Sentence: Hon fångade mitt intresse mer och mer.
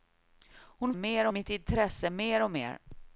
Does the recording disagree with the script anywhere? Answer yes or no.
yes